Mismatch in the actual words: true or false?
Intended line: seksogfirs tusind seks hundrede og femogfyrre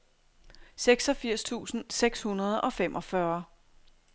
false